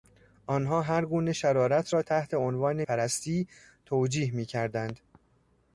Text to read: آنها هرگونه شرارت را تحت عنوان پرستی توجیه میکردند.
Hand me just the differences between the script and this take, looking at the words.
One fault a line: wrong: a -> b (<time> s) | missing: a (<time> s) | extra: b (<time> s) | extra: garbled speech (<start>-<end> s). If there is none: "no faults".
no faults